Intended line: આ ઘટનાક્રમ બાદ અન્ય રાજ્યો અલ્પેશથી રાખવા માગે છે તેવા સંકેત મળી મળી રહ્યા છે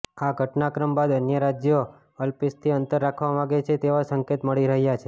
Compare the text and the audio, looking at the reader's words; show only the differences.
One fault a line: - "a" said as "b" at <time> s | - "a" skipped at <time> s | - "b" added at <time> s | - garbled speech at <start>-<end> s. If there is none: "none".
- "અંતર" added at 2.7 s
- "મળી" skipped at 4.7 s